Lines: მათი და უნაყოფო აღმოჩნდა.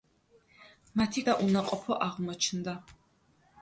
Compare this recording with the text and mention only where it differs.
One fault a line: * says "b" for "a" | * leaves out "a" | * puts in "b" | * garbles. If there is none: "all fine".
all fine